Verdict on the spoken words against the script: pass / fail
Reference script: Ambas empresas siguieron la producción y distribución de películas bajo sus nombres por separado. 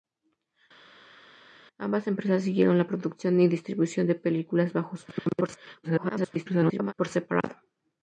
fail